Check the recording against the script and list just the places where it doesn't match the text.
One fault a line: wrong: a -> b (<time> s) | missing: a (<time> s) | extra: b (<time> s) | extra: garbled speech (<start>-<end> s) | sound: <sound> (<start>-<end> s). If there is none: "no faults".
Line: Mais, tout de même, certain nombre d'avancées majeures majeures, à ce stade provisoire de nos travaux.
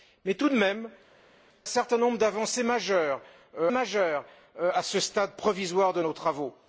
no faults